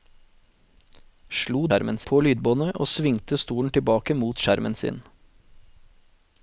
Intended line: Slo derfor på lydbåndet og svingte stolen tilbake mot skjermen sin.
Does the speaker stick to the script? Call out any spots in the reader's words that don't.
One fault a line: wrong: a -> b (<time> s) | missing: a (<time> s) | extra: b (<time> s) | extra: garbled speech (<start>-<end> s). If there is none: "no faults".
wrong: derfor -> skjermen (1.7 s)